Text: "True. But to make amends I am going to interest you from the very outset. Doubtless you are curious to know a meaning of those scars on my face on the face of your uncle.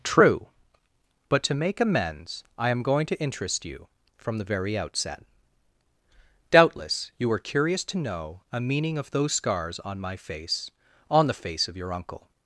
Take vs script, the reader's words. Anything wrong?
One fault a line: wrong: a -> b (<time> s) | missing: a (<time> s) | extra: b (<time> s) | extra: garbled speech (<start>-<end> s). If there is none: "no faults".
no faults